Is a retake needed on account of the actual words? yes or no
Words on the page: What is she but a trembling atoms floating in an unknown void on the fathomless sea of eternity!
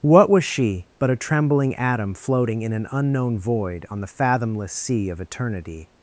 yes